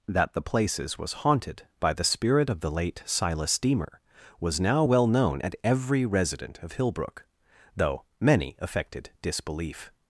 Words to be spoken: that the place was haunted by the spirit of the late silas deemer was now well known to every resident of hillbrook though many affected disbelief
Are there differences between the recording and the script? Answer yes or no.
yes